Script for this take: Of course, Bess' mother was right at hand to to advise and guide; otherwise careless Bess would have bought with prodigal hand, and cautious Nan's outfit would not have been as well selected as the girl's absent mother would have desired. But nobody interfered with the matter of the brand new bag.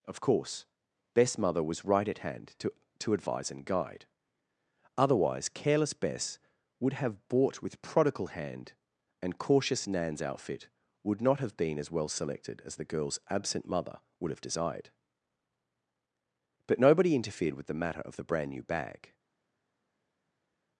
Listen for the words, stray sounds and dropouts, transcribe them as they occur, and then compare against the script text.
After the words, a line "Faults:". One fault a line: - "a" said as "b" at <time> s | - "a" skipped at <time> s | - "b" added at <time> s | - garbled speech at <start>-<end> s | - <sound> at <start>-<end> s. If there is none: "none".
Of course, Bess' mother was right at hand to to advise and guide; otherwise careless Bess would have bought with prodigal hand, and cautious Nan's outfit would not have been as well selected as the girl's absent mother would have desired. But nobody interfered with the matter of the brand new bag.
Faults:
none